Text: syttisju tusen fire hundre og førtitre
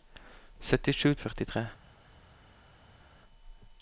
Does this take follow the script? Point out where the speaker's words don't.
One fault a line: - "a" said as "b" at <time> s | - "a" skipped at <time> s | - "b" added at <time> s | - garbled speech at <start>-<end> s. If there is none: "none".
- "tusen fire hundre" skipped at 1.1 s